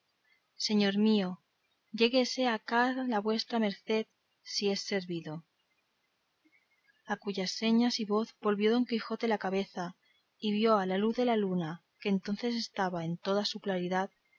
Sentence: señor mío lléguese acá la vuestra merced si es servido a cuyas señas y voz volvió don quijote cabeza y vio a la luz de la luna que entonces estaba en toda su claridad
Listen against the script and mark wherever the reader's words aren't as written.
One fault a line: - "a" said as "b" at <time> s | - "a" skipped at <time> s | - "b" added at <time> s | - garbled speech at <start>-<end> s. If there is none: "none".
- "la" added at 9.3 s